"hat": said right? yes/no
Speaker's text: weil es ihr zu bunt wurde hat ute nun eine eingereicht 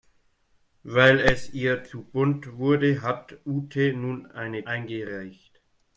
yes